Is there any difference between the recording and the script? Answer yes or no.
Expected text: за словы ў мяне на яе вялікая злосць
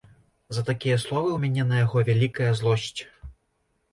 yes